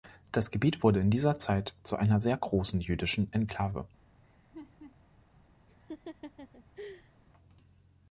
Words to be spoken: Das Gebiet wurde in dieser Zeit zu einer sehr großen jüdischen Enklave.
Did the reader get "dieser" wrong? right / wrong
right